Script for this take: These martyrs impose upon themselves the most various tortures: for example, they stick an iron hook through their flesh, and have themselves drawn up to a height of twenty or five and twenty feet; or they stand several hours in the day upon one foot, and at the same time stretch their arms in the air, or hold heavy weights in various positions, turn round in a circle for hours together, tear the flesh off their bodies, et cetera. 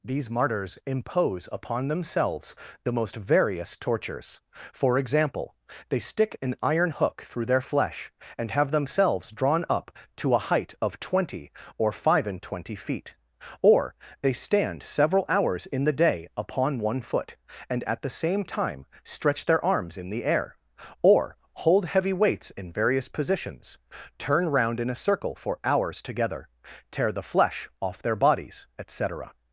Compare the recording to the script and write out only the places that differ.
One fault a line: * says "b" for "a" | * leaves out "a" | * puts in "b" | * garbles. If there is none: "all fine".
all fine